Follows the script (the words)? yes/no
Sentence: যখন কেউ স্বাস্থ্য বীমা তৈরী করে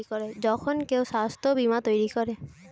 yes